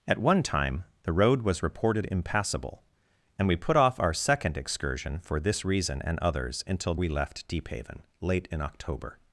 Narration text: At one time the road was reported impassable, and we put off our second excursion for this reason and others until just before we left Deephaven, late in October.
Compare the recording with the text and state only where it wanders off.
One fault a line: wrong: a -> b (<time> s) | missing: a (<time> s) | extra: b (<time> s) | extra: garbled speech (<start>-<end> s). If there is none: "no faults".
missing: just before (7.0 s)